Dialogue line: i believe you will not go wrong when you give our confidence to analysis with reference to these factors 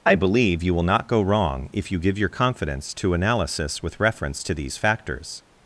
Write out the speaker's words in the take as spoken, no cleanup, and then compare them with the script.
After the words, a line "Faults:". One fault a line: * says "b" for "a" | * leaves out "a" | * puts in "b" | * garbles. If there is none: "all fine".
i believe you will not go wrong if you give your confidence to analysis with reference to these factors
Faults:
* says "if" for "when"
* says "your" for "our"